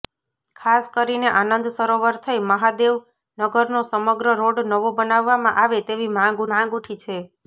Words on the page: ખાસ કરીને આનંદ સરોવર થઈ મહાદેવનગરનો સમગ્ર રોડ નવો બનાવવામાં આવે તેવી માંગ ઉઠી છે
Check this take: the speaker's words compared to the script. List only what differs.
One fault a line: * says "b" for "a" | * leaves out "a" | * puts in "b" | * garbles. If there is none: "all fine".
* puts in "માંગ"